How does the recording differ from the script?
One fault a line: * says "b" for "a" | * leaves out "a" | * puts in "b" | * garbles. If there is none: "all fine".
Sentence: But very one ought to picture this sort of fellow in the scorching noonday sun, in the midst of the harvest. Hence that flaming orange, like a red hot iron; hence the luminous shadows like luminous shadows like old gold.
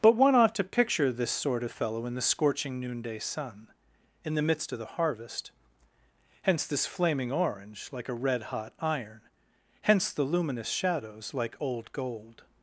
* leaves out "very"
* says "this" for "that"
* leaves out "luminous shadows like"